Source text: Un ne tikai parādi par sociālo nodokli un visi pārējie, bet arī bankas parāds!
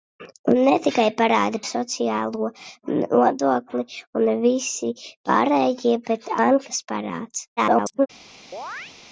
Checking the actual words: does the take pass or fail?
fail